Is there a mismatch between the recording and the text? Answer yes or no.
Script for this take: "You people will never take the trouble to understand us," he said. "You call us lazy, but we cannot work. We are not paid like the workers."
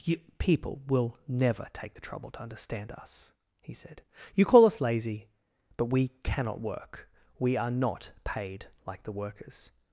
no